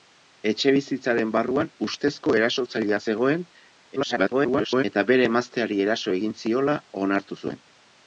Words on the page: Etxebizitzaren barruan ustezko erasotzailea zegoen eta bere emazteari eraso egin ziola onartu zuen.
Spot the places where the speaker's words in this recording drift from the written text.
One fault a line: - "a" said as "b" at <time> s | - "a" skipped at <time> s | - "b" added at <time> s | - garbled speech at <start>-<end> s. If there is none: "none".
- garbled speech at 4.0-4.8 s